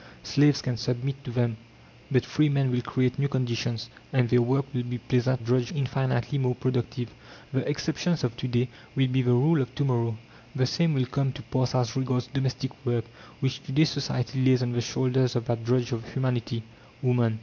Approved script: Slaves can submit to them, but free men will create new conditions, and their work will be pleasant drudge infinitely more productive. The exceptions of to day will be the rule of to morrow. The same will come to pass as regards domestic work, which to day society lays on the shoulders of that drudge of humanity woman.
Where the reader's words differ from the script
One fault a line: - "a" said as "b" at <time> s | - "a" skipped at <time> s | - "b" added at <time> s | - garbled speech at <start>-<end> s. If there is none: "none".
none